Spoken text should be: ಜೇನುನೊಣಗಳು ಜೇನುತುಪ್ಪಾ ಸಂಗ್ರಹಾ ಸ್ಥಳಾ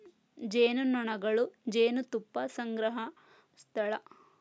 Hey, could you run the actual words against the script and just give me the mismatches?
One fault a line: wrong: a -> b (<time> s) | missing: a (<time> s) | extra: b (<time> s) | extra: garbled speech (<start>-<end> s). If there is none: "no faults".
no faults